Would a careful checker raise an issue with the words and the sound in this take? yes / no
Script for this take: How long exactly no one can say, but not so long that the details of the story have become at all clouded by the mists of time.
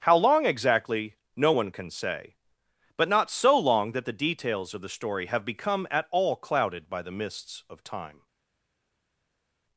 no